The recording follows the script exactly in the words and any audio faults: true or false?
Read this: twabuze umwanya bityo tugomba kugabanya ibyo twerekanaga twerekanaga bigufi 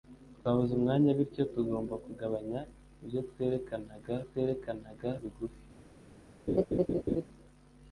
false